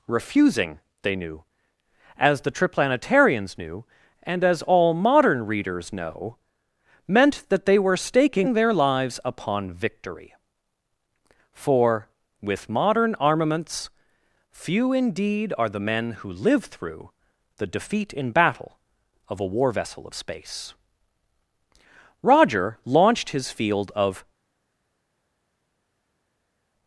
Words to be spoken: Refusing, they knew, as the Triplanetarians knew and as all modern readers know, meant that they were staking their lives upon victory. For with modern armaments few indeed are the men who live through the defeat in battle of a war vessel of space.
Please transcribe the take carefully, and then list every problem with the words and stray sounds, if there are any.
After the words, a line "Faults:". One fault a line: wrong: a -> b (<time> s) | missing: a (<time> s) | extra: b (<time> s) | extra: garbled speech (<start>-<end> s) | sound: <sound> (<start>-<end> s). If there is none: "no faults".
Refusing, they knew, as the Triplanetarians knew and as all modern readers know, meant that they were staking their lives upon victory. For with modern armaments few indeed are the men who live through the defeat in battle of a war vessel of space. Roger launched his field of
Faults:
extra: Roger launched his field of (22.2 s)